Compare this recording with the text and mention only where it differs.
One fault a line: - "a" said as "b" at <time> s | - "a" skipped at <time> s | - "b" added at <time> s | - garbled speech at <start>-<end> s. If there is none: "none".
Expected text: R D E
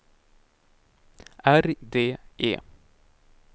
none